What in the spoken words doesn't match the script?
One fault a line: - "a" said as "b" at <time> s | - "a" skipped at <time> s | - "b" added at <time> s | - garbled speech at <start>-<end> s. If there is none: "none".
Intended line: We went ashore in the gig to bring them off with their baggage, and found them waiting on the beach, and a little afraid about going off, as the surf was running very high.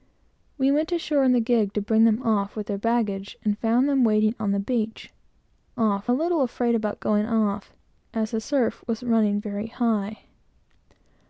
- "and" said as "off" at 5.8 s